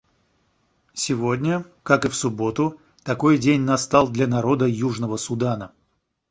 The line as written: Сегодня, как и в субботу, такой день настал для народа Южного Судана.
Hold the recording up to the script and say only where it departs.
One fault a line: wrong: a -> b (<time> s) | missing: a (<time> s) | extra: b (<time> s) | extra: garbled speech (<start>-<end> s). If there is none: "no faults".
no faults